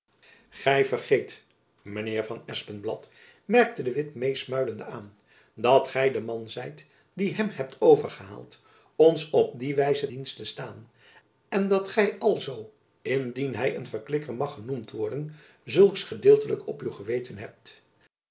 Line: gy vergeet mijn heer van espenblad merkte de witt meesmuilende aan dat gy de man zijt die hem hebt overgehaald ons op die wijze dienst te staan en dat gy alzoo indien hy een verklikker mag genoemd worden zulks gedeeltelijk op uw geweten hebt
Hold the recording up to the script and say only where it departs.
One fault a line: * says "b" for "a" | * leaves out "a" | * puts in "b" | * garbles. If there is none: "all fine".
all fine